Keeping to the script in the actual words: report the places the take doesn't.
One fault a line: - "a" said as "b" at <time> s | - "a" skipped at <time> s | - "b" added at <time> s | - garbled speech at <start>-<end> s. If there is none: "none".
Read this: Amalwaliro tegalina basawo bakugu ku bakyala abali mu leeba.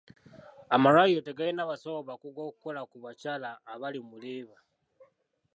- "okukola" added at 2.5 s